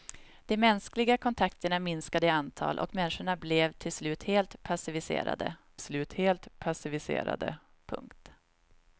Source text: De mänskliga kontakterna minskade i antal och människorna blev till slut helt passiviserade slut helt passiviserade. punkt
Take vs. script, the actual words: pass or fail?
pass